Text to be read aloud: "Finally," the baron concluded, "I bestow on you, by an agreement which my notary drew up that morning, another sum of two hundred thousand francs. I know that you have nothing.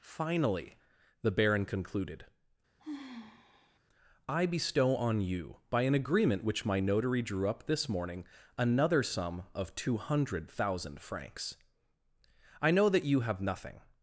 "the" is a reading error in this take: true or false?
false